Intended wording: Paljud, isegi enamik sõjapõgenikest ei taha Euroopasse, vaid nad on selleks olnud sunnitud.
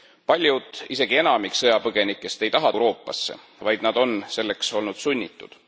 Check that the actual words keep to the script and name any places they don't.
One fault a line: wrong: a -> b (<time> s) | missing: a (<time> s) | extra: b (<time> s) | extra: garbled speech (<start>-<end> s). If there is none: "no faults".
no faults